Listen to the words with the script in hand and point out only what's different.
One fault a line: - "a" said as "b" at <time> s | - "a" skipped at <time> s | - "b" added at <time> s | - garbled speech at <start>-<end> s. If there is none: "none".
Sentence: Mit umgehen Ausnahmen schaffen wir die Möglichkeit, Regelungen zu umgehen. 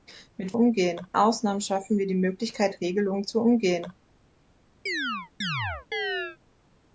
none